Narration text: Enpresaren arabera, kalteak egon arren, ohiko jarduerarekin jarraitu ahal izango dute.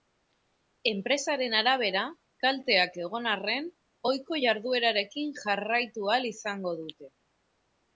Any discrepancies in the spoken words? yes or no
no